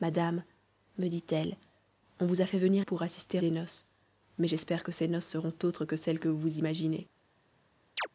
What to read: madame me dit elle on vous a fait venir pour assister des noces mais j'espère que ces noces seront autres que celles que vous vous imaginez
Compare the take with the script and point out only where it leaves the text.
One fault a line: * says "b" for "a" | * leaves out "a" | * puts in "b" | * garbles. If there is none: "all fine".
all fine